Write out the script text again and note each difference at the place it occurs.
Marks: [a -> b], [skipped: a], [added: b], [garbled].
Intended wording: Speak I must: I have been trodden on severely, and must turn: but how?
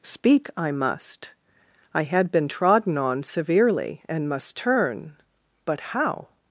Speak I must: I [have -> had] been trodden on severely, and must turn: but how?